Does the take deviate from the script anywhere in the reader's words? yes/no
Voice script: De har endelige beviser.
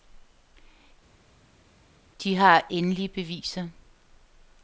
no